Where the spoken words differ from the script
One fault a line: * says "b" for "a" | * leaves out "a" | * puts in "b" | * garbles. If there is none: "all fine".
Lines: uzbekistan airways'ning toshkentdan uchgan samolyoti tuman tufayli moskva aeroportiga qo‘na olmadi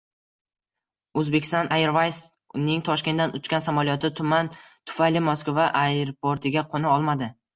all fine